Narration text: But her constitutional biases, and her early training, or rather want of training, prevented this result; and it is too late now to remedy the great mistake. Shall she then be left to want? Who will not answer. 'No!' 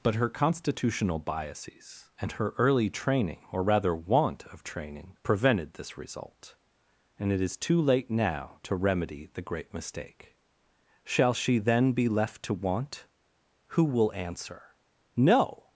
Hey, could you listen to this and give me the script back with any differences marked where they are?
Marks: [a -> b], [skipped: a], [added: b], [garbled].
But her constitutional biases, and her early training, or rather want of training, prevented this result; and it is too late now to remedy the great mistake. Shall she then be left to want? Who will [skipped: not] answer. 'No!'